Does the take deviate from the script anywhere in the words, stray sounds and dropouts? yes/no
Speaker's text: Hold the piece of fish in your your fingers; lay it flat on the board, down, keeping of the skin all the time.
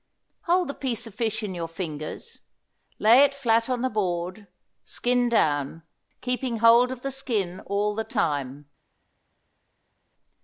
yes